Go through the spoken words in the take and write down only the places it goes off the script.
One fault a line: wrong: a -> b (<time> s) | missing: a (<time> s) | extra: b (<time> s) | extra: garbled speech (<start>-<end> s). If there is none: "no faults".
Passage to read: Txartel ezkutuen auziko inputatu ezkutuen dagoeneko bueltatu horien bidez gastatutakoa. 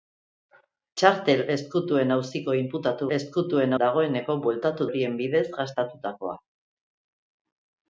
no faults